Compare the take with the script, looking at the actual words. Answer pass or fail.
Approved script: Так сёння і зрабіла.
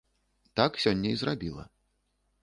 pass